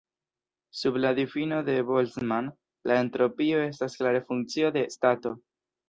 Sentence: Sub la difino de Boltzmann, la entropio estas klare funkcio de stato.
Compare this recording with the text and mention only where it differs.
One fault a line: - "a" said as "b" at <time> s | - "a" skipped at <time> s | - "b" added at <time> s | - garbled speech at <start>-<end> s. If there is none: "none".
none